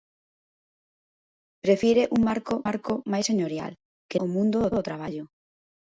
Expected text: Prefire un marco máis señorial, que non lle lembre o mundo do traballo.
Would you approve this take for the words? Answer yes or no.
no